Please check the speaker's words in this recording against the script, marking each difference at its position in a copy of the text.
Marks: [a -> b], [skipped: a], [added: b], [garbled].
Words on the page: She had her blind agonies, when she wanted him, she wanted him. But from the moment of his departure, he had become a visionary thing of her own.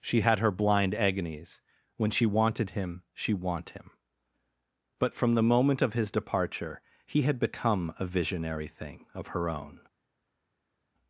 She had her blind agonies, when she wanted him, she [wanted -> want] him. But from the moment of his departure, he had become a visionary thing of her own.